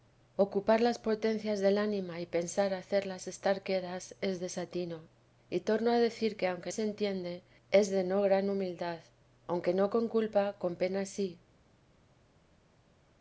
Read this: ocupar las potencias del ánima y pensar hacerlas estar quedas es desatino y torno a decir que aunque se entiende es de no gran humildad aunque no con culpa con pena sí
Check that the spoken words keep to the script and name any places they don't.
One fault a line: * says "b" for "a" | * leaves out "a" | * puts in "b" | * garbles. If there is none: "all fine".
all fine